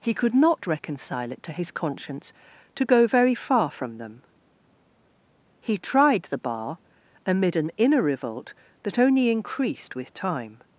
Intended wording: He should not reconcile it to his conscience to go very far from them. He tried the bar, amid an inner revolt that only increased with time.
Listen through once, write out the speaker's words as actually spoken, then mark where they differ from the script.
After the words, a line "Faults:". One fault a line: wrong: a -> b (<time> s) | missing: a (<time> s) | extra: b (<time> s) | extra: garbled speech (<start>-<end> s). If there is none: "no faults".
He could not reconcile it to his conscience to go very far from them. He tried the bar, amid an inner revolt that only increased with time.
Faults:
wrong: should -> could (0.1 s)